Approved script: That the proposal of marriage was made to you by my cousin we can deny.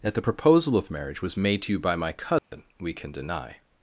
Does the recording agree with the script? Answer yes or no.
yes